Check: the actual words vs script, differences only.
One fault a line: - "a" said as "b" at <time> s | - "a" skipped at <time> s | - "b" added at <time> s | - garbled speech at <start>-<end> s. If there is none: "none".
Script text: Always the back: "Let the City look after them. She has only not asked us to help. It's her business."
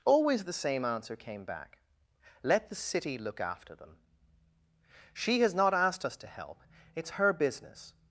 - "same answer came" added at 0.5 s
- "only" skipped at 5.5 s